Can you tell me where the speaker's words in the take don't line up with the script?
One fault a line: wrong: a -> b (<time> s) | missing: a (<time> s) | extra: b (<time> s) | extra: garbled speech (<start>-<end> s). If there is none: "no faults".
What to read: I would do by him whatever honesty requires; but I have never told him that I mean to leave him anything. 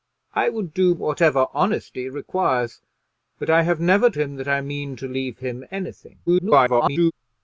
missing: by him (0.9 s)
missing: told (4.1 s)
extra: garbled speech (6.3-7.1 s)